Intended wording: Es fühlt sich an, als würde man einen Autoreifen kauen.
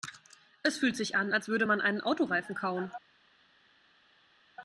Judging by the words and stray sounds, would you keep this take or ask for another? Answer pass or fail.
pass